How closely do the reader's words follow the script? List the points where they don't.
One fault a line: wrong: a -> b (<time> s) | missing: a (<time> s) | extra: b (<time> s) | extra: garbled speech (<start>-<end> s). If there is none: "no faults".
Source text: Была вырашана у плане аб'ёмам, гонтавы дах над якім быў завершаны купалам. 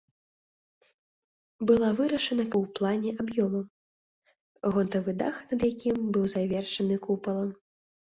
no faults